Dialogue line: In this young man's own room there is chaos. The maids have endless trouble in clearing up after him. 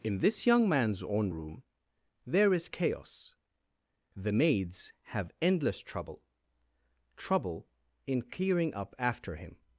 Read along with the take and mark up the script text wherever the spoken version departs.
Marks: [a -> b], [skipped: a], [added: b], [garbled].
In this young man's own room there is chaos. The maids have endless trouble [added: trouble] in clearing up after him.